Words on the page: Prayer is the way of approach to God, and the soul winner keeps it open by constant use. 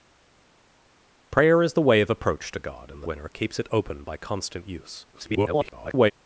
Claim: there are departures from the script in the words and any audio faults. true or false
true